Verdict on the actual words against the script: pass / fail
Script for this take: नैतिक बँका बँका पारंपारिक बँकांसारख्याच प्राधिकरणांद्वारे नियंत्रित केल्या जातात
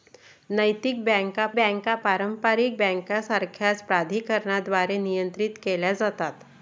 pass